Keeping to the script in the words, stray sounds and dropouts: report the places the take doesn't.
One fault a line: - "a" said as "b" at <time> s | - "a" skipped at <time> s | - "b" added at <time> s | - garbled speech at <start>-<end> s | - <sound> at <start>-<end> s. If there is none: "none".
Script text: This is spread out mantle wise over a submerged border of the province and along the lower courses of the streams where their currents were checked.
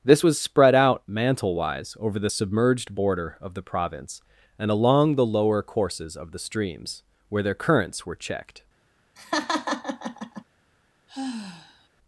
- "is" said as "was" at 0.2 s
- "a" said as "the" at 2.2 s
- laugh at 9.2-10.4 s
- sigh at 11.1-11.9 s